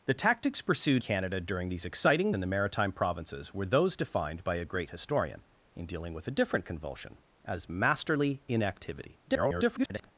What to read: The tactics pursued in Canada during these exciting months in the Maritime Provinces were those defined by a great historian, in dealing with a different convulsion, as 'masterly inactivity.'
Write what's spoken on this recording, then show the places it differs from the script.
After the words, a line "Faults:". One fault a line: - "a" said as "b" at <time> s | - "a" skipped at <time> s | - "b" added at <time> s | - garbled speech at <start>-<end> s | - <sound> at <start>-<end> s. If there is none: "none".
The tactics pursued Canada during these exciting in the Maritime Provinces were those defined by a great historian, in dealing with a different convulsion, as 'masterly inactivity.' [garbled]
Faults:
- "in" skipped at 1.0 s
- "months" skipped at 2.3 s
- garbled speech at 9.3-10.1 s